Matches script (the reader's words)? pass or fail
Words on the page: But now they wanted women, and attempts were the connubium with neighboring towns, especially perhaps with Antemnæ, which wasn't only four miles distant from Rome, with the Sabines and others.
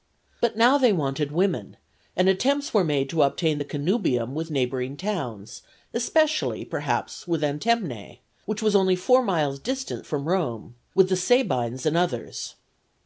fail